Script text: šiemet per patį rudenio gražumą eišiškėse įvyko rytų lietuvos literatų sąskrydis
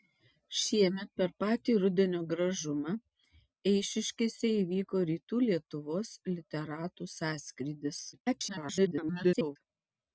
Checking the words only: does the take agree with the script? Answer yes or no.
no